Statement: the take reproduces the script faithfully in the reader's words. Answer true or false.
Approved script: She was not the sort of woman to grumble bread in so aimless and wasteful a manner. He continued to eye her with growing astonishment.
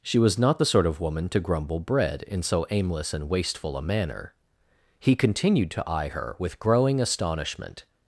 true